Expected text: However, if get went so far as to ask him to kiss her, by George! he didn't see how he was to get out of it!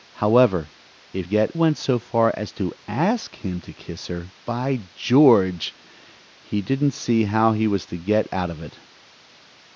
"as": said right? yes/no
yes